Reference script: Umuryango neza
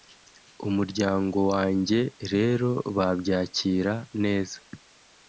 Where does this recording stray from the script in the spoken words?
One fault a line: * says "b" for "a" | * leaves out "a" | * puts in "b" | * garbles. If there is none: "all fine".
* puts in "wanjye rero babyakira"